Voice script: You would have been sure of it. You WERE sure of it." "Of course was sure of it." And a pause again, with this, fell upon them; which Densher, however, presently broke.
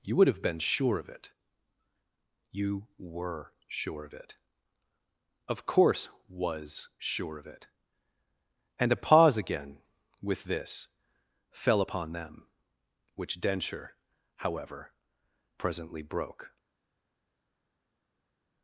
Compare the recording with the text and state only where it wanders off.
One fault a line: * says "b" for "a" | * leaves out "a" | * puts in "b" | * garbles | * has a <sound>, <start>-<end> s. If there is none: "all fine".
all fine